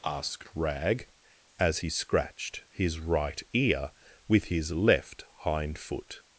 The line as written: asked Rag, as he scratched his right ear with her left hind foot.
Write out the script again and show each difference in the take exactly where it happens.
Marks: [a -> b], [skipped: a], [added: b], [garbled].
asked Rag, as he scratched his right ear with [her -> his] left hind foot.